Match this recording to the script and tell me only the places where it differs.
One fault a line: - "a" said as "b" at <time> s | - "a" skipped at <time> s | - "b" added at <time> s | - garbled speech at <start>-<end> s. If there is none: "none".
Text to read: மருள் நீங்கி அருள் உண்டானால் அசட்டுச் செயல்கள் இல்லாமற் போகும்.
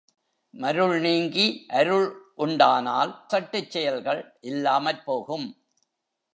none